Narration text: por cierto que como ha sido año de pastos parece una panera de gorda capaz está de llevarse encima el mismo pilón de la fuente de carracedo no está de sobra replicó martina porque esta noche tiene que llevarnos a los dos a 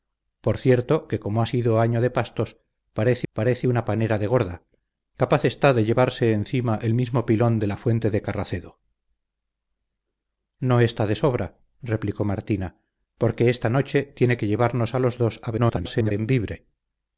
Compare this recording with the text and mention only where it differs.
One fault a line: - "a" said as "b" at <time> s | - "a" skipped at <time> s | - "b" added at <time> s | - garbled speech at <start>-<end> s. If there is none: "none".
- "parece" added at 3.3 s
- garbled speech at 15.6-16.1 s